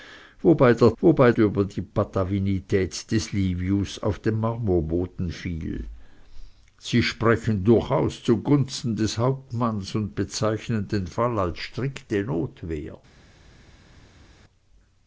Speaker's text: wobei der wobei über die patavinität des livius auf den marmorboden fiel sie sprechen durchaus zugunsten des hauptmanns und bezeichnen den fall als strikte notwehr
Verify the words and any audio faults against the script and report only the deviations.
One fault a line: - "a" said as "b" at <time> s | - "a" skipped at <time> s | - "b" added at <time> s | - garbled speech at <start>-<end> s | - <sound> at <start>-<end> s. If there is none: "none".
none